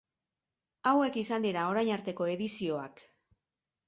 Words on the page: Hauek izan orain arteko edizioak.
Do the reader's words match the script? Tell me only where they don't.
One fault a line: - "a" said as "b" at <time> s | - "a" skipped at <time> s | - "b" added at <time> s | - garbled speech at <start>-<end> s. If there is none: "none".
- "dira" added at 1.4 s